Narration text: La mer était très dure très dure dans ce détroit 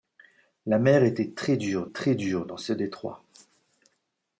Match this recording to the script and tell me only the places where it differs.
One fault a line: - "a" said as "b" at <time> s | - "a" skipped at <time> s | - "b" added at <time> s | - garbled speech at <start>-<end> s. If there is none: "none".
none